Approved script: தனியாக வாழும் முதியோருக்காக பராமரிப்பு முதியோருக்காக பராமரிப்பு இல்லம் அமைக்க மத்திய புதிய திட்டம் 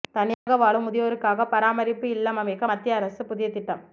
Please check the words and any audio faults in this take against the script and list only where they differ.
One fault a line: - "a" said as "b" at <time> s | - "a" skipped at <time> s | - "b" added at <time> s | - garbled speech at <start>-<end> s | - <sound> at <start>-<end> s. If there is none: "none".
- dropout at 0.3-0.5 s
- "முதியோருக்காக பராமரிப்பு" skipped at 2.1 s
- "அரசு" added at 3.0 s